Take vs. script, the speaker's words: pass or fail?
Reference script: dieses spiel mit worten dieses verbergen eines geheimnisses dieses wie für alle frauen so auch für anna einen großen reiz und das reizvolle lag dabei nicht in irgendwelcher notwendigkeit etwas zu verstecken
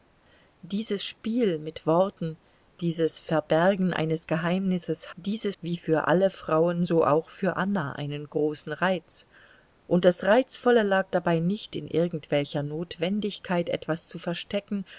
pass